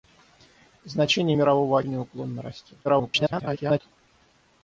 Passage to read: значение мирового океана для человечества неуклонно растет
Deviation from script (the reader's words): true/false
true